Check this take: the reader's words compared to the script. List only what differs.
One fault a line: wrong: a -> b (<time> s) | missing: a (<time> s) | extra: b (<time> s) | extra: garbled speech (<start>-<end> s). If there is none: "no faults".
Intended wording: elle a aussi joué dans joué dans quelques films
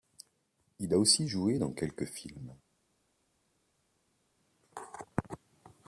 wrong: elle -> il (0.8 s)
missing: joué dans (1.7 s)